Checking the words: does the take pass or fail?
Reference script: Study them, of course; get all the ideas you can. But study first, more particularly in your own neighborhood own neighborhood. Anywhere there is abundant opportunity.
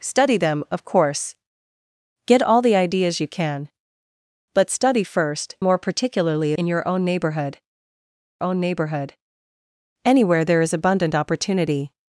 pass